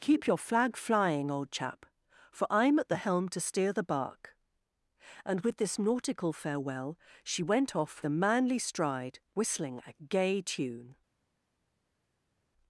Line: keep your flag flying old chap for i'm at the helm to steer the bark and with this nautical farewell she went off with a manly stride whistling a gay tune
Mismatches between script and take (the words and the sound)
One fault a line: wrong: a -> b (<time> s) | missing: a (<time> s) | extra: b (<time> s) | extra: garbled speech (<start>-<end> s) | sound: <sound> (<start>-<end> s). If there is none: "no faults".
missing: with (8.0 s)